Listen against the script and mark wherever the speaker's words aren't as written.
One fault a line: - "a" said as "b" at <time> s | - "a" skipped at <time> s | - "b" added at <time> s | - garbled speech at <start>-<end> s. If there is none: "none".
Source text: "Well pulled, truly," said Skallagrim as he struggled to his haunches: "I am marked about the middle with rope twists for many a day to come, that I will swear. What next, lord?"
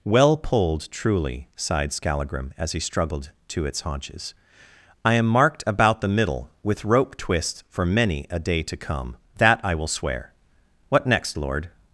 - "said" said as "sighed" at 1.6 s
- "his" said as "its" at 3.6 s